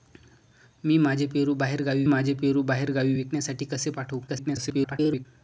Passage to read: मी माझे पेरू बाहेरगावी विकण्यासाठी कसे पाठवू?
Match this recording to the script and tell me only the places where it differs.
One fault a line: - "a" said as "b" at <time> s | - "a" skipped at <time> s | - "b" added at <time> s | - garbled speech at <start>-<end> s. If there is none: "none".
- "माझे पेरू बाहेरगावी" added at 2.0 s
- garbled speech at 4.3-5.3 s